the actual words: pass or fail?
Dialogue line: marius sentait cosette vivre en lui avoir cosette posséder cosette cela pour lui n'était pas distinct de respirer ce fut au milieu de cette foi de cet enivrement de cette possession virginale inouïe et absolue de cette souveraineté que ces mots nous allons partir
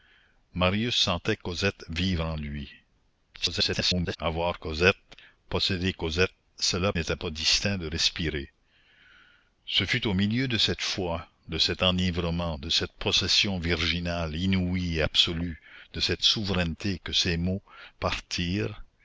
fail